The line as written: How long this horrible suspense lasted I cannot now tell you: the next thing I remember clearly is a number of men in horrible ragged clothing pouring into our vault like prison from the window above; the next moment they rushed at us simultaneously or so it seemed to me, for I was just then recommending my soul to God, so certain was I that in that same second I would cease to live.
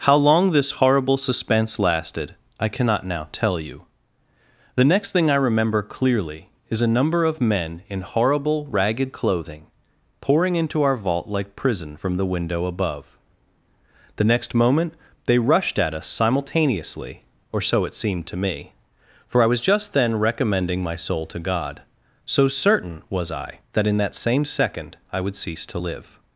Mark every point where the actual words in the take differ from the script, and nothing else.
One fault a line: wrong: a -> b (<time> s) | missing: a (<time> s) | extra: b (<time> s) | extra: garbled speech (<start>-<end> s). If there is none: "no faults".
no faults